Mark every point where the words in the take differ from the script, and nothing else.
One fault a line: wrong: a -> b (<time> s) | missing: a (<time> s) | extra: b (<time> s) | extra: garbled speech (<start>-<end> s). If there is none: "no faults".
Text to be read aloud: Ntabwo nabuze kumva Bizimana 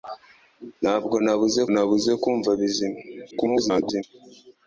extra: nabuze (1.7 s)
extra: garbled speech (3.3-4.0 s)